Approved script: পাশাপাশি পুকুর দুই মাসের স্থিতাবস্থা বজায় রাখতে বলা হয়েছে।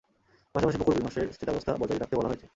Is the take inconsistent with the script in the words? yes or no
no